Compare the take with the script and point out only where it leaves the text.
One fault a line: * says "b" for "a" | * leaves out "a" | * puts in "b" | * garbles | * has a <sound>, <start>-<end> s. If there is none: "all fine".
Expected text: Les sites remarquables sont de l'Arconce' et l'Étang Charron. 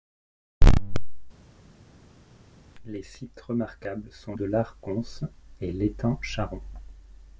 all fine